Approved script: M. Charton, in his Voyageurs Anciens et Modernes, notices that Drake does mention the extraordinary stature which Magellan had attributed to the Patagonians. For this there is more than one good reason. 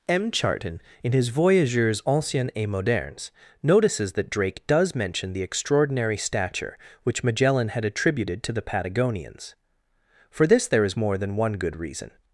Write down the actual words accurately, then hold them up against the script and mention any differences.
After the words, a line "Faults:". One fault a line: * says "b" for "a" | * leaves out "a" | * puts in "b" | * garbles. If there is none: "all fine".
M. Charton, in his Voyageurs Anciens et Modernes, notices that Drake does mention the extraordinary stature which Magellan had attributed to the Patagonians. For this there is more than one good reason.
Faults:
all fine